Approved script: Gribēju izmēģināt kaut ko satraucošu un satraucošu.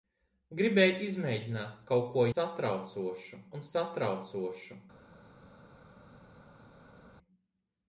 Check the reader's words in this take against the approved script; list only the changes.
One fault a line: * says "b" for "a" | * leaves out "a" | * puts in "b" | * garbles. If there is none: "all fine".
all fine